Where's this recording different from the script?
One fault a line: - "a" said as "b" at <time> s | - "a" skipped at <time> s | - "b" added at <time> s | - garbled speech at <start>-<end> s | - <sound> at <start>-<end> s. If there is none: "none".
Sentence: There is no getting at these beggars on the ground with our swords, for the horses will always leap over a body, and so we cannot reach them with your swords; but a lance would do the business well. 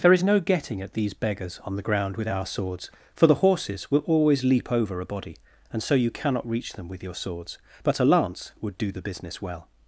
- "we" said as "you" at 5.9 s